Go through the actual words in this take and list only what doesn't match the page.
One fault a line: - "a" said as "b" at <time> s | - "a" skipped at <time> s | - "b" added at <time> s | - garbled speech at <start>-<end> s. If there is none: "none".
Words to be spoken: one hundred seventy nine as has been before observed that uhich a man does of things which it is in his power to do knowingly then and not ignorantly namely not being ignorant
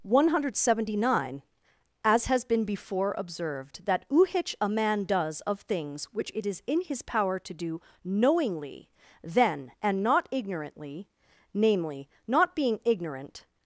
none